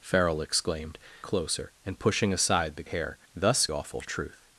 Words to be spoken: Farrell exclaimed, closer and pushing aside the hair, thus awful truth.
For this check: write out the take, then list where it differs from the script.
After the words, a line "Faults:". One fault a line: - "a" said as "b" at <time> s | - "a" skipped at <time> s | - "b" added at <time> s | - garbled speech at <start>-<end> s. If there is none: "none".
Farrell exclaimed, closer and pushing aside the hair, thus awful truth.
Faults:
none